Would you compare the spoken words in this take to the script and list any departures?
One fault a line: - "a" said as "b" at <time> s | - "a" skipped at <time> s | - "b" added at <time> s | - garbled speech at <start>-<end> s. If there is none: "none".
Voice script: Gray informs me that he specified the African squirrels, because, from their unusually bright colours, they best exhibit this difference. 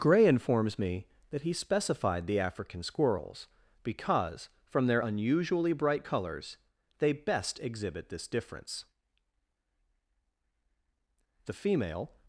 - "The female" added at 11.4 s